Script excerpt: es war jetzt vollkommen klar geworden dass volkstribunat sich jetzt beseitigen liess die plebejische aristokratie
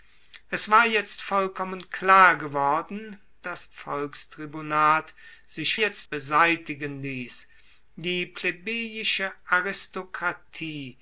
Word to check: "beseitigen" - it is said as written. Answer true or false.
true